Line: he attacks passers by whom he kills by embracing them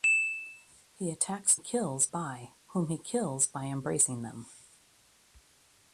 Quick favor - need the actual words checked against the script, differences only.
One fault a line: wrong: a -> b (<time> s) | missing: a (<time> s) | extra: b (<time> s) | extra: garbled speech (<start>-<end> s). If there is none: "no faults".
wrong: passers -> kills (1.6 s)